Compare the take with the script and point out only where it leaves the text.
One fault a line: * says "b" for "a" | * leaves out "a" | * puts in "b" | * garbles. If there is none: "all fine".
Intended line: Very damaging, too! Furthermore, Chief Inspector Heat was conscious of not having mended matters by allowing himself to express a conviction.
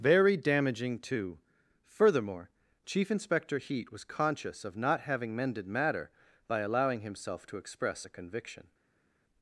* says "matter" for "matters"